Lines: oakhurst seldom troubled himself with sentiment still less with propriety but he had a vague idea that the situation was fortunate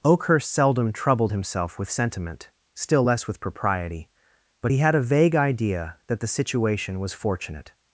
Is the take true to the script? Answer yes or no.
yes